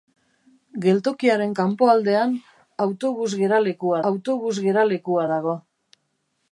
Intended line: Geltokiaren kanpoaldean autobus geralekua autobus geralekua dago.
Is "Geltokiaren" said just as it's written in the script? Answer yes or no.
yes